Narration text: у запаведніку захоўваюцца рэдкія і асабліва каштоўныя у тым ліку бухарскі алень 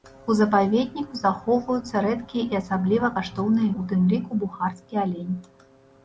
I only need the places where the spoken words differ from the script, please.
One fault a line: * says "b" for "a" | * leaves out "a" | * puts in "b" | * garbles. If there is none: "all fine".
all fine